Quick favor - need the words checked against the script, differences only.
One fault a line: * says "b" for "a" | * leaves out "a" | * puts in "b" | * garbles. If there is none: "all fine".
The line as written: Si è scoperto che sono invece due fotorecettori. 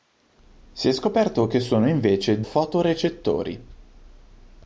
* leaves out "due"